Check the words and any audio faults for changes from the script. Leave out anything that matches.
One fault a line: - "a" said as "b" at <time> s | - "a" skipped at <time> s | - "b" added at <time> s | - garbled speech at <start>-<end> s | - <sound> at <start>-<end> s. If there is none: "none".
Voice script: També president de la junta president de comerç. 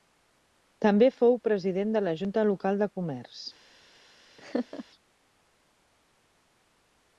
- "fou" added at 1.2 s
- "president" said as "local" at 2.5 s
- laugh at 4.4-4.9 s